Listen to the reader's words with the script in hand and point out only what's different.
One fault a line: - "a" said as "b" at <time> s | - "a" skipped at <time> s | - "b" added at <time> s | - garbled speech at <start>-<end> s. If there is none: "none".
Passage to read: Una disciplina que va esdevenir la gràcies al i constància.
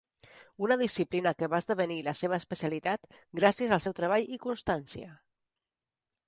- "seva especialitat" added at 2.2 s
- "seu treball" added at 3.8 s